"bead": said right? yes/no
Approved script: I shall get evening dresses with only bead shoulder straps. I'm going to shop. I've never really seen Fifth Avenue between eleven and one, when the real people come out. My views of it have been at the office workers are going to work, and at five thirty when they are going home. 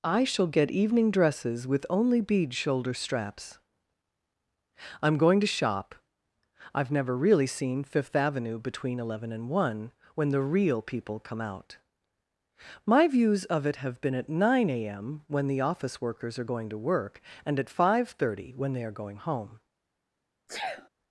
yes